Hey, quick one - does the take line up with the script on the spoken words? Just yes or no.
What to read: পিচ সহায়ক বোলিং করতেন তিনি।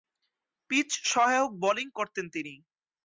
yes